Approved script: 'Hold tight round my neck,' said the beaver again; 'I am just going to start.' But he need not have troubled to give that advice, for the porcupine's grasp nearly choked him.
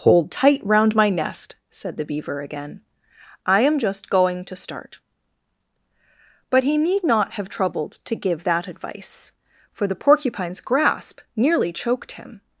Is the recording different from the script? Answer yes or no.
yes